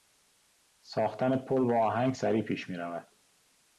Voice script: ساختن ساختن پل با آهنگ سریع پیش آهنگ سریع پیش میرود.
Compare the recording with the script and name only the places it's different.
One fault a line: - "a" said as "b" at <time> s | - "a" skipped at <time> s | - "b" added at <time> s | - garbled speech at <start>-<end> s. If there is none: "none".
- "ساختن" skipped at 1.4 s
- "آهنگ سریع پیش" skipped at 2.7 s